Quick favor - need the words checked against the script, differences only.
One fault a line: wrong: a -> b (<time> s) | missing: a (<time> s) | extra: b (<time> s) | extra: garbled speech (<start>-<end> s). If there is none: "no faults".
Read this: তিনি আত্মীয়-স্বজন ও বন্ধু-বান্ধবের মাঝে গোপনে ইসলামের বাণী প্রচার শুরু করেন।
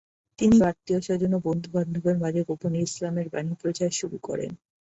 no faults